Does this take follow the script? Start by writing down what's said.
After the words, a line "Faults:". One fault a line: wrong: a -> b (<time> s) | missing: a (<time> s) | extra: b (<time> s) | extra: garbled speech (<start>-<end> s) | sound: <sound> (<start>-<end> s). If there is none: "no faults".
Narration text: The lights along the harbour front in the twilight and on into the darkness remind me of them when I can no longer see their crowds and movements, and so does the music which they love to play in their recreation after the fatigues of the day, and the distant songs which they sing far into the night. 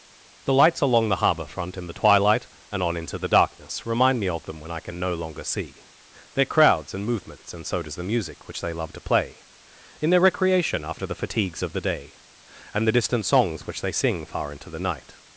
The lights along the harbour front in the twilight and on into the darkness remind me of them when I can no longer see their crowds and movements, and so does the music which they love to play in their recreation after the fatigues of the day, and the distant songs which they sing far into the night.
Faults:
no faults